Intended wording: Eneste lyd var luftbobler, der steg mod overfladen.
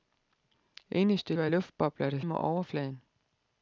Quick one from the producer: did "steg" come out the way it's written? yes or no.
no